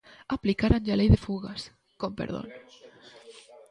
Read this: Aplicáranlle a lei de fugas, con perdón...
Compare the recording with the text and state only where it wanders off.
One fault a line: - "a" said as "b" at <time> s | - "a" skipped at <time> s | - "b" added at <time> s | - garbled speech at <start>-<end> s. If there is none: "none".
none